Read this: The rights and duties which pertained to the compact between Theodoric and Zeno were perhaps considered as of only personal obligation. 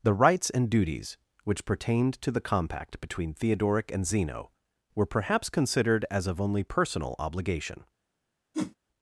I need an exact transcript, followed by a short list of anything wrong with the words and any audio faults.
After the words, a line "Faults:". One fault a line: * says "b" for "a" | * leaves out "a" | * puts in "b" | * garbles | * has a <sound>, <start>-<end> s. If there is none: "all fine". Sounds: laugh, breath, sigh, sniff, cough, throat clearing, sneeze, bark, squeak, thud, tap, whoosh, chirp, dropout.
The rights and duties which pertained to the compact between Theodoric and Zeno were perhaps considered as of only personal obligation.
Faults:
* has a whoosh, 8.5-8.8 s